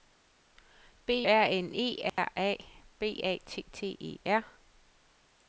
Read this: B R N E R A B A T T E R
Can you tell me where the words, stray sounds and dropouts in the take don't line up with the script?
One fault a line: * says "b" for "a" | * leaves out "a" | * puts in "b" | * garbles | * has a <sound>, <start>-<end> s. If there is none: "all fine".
* has a dropout, 2.1-2.2 s